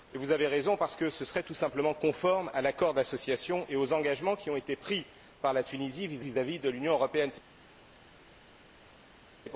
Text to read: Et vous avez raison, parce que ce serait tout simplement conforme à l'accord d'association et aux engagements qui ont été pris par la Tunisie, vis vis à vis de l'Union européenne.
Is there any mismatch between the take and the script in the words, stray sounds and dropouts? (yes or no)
no